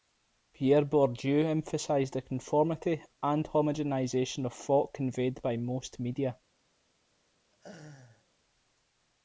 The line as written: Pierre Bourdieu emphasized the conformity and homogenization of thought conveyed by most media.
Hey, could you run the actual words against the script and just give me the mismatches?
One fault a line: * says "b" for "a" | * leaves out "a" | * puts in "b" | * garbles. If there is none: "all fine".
all fine